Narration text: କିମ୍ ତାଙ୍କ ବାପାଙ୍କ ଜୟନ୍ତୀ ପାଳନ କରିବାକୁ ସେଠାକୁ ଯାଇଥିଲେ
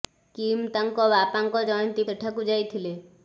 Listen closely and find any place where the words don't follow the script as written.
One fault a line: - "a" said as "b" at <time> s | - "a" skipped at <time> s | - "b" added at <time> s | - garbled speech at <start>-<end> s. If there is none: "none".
- "ପାଳନ କରିବାକୁ" skipped at 2.1 s